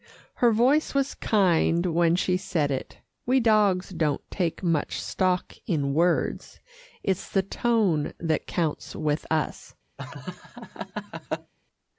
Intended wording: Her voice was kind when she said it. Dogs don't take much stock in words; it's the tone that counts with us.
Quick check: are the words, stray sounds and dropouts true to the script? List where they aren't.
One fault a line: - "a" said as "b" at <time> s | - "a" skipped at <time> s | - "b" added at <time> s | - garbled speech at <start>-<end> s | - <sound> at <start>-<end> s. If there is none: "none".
- "We" added at 3.3 s
- laugh at 10.0-11.5 s